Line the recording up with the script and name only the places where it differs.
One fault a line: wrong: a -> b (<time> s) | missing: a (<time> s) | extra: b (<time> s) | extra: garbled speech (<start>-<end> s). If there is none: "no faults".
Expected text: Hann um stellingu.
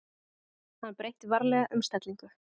extra: breytti varlega (1.0 s)